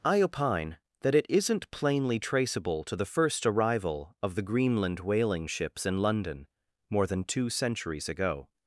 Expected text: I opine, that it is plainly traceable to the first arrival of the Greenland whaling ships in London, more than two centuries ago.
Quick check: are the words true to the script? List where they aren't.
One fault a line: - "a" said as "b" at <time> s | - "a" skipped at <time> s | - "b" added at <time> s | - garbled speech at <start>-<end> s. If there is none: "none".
- "is" said as "isn't" at 1.3 s